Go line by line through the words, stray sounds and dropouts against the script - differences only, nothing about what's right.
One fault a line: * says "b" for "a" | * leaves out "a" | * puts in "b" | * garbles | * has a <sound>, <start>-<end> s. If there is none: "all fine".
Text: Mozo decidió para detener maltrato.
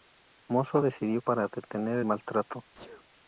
* has a sneeze, 2.7-3.0 s